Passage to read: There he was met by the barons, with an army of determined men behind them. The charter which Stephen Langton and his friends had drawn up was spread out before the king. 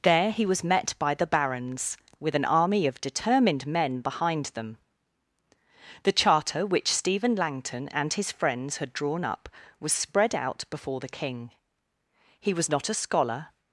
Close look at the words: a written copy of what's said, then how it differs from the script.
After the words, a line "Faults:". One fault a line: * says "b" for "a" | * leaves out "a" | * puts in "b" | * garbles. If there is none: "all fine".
There he was met by the barons, with an army of determined men behind them. The charter which Stephen Langton and his friends had drawn up was spread out before the king. He was not a scholar
Faults:
* puts in "He was not a scholar"